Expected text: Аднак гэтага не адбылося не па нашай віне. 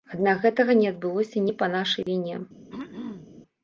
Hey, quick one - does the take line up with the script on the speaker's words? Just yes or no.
yes